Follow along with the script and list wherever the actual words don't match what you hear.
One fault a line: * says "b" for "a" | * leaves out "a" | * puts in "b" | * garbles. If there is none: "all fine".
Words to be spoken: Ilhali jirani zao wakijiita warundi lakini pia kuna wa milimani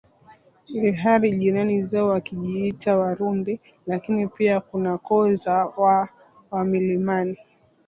* puts in "koo za waha"